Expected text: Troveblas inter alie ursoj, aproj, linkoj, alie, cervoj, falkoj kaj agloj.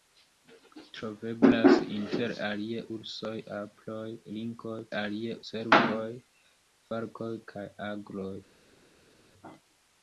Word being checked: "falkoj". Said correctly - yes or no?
yes